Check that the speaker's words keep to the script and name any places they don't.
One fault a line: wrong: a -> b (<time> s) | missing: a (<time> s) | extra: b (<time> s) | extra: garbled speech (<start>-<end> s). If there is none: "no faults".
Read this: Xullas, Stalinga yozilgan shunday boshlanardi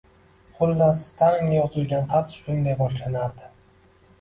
extra: xat (2.1 s)